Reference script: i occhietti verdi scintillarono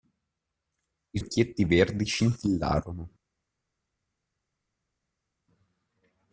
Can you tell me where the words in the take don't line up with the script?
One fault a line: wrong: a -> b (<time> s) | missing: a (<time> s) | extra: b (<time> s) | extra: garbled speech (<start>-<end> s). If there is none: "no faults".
no faults